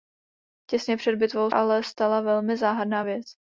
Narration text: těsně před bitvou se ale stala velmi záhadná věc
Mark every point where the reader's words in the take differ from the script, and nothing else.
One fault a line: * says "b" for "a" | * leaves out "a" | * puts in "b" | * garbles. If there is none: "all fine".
* leaves out "se"